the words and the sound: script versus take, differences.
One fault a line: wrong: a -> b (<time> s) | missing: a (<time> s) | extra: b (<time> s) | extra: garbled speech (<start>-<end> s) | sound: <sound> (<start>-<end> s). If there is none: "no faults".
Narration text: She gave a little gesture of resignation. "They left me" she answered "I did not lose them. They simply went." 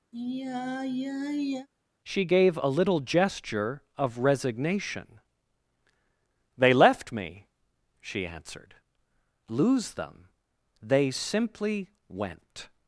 sound: sigh (0.1-1.7 s)
missing: I did not (8.7 s)